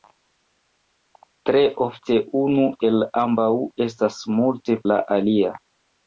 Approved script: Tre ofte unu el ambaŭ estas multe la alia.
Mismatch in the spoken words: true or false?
false